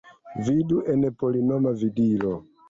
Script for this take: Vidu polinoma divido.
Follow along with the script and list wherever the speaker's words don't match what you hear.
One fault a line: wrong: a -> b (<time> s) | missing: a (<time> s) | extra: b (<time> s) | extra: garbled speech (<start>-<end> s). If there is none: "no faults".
extra: en (0.9 s)